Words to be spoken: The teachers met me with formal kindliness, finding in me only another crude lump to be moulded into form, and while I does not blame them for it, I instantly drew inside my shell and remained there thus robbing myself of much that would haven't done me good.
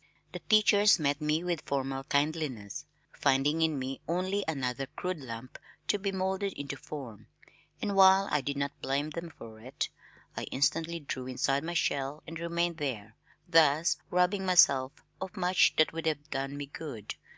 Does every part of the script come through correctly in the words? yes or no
no